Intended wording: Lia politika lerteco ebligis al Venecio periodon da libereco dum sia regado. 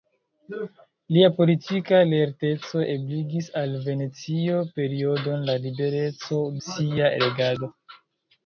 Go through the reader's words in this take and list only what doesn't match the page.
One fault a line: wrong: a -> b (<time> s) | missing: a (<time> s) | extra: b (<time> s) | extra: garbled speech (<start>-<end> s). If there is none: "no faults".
missing: dum (6.4 s)